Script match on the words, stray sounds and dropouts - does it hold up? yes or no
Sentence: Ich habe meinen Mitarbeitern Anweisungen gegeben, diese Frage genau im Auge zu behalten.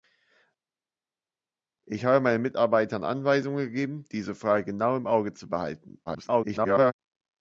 no